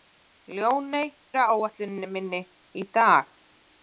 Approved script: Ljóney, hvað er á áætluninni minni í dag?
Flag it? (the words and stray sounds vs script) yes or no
yes